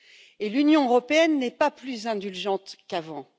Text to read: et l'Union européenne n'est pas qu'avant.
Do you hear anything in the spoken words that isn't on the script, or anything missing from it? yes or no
yes